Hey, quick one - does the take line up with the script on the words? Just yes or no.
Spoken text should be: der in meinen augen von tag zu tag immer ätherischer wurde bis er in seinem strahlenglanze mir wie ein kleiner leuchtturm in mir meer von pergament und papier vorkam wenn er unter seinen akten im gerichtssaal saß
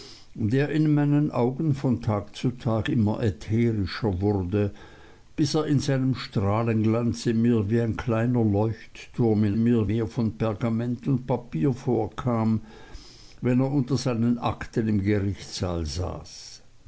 yes